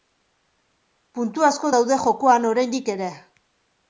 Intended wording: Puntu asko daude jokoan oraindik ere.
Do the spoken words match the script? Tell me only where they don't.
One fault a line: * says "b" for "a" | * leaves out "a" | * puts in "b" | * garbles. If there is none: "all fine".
all fine